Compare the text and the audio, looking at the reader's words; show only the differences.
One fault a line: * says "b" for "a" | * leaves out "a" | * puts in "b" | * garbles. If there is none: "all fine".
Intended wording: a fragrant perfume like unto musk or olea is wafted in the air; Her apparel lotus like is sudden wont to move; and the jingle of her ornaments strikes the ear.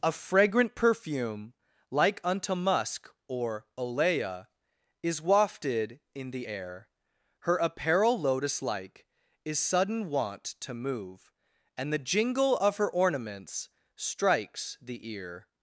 all fine